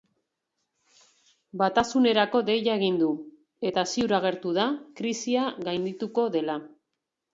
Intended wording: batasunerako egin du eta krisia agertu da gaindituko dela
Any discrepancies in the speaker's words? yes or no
yes